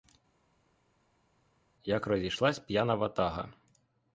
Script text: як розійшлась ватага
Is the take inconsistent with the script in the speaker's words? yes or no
yes